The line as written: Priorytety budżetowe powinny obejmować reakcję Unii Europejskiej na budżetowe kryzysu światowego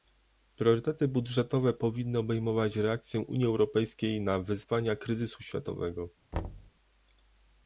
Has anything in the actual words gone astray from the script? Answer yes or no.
yes